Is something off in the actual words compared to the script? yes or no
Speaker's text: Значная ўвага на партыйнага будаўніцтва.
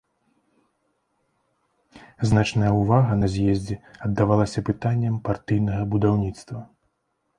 yes